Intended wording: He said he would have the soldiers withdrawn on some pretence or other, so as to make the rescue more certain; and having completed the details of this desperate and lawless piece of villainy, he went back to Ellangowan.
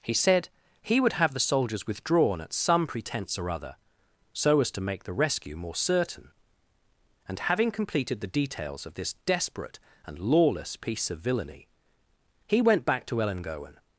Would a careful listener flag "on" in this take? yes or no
yes